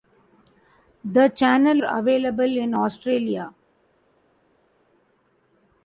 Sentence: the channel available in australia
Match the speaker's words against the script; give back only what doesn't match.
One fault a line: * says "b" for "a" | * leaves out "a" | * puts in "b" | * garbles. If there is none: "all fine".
all fine